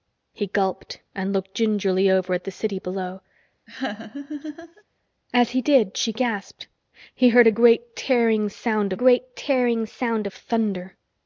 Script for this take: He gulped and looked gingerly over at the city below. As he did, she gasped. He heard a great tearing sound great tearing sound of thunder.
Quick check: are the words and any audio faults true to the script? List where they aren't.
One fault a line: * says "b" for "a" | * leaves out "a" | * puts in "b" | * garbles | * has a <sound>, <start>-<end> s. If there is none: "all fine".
* has a laugh, 3.7-4.8 s